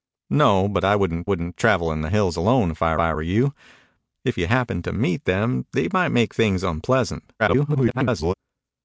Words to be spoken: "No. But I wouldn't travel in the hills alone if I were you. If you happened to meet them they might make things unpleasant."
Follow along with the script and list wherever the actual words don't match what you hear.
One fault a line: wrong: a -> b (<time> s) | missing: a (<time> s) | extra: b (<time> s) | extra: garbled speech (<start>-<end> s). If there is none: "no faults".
extra: wouldn't (1.2 s)
extra: I (3.0 s)
extra: garbled speech (7.4-8.3 s)